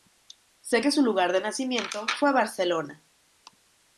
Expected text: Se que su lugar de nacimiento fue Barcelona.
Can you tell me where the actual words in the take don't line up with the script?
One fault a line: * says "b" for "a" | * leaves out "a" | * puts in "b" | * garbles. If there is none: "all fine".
all fine